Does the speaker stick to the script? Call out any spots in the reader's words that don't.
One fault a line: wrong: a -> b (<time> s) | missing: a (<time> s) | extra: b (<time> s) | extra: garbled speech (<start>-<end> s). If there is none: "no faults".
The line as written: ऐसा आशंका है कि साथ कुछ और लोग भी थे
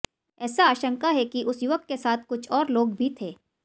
extra: उस युवक के (1.4 s)